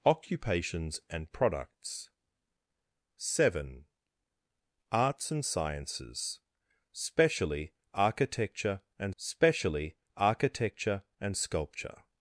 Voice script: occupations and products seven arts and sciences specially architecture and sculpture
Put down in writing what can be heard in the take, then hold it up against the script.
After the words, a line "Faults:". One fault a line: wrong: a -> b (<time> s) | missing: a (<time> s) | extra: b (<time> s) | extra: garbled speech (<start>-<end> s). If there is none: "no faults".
occupations and products seven arts and sciences specially architecture and specially architecture and sculpture
Faults:
extra: specially architecture and (9.2 s)